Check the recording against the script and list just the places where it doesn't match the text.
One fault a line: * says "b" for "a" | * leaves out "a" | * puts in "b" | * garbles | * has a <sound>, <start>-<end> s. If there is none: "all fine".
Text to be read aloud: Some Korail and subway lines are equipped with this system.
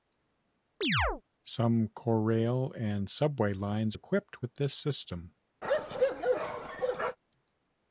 * has a chirp, 0.8-1.2 s
* leaves out "are"
* has a bark, 5.6-7.2 s